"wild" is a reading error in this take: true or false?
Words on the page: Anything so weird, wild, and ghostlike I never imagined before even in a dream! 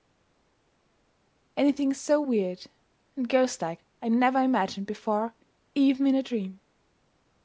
true